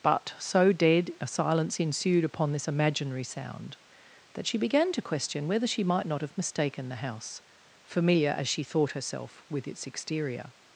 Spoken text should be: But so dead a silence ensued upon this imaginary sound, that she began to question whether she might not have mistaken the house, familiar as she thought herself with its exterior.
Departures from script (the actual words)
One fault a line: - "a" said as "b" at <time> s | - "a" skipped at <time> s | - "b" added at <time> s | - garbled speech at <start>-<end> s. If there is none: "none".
none